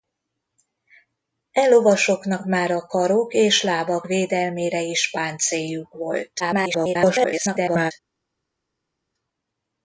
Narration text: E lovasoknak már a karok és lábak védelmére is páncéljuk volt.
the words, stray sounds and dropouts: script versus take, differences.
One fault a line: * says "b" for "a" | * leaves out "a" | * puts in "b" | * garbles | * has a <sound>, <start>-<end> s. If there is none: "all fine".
* garbles